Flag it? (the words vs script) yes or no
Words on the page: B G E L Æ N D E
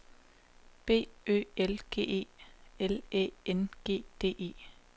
yes